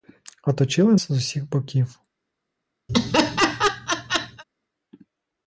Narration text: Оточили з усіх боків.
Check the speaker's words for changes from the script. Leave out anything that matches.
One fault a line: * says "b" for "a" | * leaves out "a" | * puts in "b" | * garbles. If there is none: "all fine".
all fine